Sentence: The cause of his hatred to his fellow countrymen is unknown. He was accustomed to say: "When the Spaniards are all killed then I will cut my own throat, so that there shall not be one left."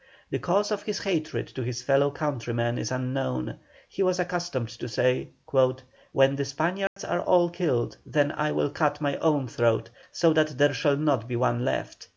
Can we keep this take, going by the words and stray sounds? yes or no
no